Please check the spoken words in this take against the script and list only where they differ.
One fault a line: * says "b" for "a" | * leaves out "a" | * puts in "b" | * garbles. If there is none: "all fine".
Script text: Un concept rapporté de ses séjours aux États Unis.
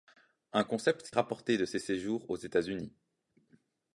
all fine